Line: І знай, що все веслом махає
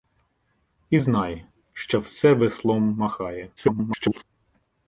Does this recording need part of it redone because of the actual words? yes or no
yes